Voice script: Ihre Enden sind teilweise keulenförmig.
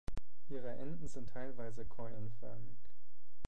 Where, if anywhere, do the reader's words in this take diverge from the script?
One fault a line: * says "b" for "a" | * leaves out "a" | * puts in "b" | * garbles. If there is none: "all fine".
all fine